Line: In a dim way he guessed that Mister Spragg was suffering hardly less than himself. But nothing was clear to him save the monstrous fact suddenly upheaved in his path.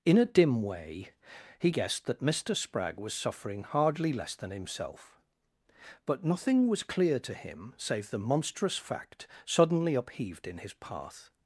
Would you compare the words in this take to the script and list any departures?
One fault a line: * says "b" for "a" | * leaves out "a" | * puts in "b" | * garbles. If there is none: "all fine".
all fine